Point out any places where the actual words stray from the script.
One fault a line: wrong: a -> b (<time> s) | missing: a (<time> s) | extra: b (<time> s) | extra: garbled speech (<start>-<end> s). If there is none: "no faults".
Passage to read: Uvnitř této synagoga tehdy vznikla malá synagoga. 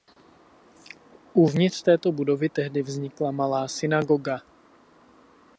wrong: synagoga -> budovy (2.1 s)